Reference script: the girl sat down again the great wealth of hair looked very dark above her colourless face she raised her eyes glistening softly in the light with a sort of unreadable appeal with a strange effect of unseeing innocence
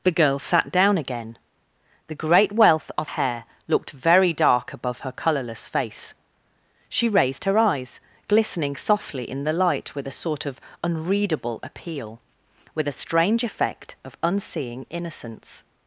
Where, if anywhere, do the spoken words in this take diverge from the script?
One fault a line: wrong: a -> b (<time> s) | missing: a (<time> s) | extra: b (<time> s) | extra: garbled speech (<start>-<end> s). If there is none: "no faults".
no faults